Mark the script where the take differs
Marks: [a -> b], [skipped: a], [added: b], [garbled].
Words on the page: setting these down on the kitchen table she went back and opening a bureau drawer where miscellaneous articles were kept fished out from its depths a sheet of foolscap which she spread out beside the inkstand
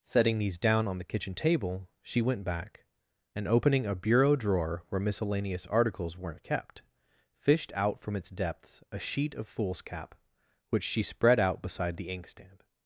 setting these down on the kitchen table she went back and opening a bureau drawer where miscellaneous articles [were -> weren't] kept fished out from its depths a sheet of foolscap which she spread out beside the inkstand